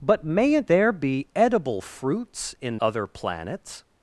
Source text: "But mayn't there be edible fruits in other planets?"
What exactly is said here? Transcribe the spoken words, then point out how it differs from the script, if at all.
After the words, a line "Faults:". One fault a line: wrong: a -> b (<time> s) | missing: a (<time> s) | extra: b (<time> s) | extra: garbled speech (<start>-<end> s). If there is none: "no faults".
"But mayn't there be edible fruits in other planets?"
Faults:
no faults